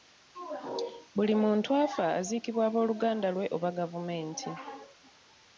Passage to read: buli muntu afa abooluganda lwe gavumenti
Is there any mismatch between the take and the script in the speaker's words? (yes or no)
yes